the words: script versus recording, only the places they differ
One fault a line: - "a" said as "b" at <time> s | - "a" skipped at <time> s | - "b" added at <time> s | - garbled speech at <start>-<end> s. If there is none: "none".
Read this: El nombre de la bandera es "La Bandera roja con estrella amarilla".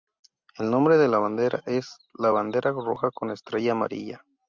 none